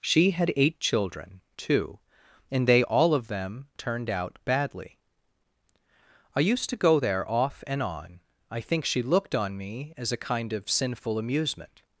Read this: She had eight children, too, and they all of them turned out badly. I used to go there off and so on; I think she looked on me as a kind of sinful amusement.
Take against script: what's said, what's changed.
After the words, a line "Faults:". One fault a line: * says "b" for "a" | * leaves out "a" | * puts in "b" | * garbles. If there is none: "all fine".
She had eight children, too, and they all of them turned out badly. I used to go there off and on; I think she looked on me as a kind of sinful amusement.
Faults:
* leaves out "so"